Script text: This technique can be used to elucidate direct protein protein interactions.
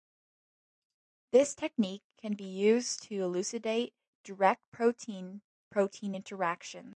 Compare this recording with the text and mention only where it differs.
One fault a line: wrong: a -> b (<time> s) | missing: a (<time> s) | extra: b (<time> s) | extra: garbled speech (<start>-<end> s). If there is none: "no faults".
no faults